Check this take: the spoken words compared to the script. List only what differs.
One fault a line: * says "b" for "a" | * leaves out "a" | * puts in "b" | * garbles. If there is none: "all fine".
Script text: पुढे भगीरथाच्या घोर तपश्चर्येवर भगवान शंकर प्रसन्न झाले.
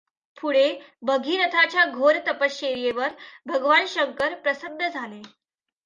all fine